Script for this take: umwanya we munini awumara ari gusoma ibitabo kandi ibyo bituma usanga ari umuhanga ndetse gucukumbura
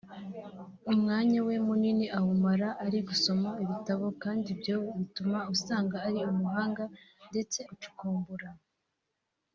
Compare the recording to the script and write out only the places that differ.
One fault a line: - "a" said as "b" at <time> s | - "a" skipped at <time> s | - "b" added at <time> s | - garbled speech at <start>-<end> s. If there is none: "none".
none